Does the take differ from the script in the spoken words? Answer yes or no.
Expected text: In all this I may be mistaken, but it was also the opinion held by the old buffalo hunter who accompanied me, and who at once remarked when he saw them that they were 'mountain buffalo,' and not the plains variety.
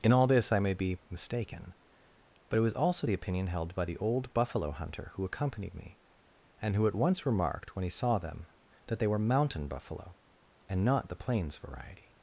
no